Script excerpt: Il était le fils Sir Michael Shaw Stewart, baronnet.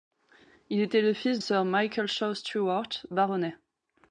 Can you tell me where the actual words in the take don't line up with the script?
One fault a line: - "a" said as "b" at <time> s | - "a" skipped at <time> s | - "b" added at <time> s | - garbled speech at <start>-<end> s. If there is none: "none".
none